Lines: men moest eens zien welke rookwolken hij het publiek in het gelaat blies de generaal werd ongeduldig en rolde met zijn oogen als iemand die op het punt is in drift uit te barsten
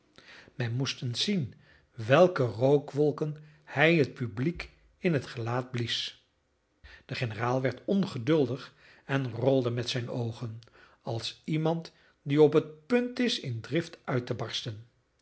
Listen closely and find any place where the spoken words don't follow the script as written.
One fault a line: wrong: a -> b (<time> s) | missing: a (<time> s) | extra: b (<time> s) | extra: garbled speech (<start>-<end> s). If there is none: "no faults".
no faults